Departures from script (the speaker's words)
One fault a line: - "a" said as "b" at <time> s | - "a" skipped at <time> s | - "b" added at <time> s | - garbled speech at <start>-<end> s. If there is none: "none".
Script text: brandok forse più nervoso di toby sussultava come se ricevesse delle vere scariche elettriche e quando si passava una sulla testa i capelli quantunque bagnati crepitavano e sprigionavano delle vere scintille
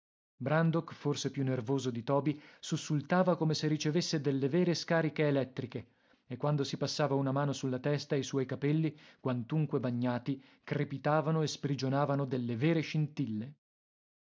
- "mano" added at 7.3 s
- "suoi" added at 8.2 s